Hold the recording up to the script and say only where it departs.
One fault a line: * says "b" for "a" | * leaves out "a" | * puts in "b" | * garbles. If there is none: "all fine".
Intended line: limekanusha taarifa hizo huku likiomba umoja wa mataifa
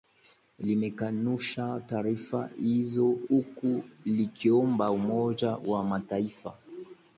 all fine